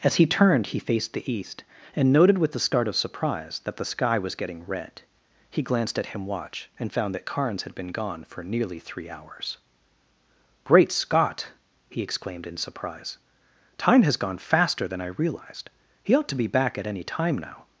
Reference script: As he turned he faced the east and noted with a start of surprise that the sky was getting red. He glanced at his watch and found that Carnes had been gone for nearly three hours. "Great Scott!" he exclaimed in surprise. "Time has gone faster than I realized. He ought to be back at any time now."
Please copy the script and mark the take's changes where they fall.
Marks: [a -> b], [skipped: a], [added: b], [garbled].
As he turned he faced the east and noted with a start of surprise that the sky was getting red. He glanced at [his -> him] watch and found that Carnes had been gone for nearly three hours. "Great Scott!" he exclaimed in surprise. "Time has gone faster than I realized. He ought to be back at any time now."